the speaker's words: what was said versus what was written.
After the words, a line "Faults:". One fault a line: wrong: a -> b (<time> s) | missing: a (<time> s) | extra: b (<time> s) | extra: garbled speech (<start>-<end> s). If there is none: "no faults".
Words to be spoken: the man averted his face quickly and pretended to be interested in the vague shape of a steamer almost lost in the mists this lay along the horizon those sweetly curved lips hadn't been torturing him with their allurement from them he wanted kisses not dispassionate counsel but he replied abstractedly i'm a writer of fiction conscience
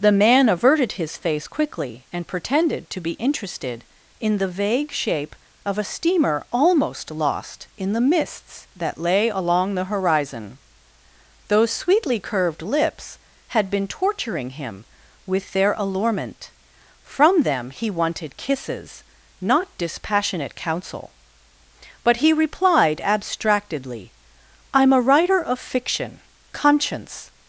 the man averted his face quickly and pretended to be interested in the vague shape of a steamer almost lost in the mists that lay along the horizon those sweetly curved lips had been torturing him with their allurement from them he wanted kisses not dispassionate counsel but he replied abstractedly i'm a writer of fiction conscience
Faults:
wrong: this -> that (8.8 s)
wrong: hadn't -> had (13.5 s)